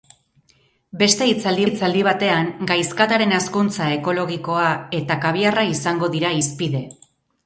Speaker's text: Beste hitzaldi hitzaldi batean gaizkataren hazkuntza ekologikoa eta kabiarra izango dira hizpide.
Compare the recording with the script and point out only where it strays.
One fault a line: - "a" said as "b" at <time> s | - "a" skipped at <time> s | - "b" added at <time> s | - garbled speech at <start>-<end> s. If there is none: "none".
none